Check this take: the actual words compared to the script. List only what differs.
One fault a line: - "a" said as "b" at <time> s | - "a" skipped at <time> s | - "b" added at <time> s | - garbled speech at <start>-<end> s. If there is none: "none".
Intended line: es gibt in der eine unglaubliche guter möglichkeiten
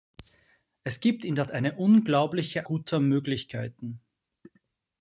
none